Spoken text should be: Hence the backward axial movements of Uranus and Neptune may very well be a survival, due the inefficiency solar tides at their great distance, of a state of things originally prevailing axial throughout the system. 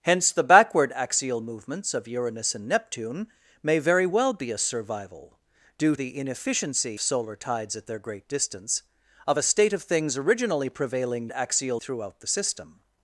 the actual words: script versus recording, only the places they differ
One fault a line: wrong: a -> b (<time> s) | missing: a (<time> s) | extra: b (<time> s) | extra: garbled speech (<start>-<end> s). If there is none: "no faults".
no faults